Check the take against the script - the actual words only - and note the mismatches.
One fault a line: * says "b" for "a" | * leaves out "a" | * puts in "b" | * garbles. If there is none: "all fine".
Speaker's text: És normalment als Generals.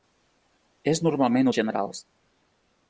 all fine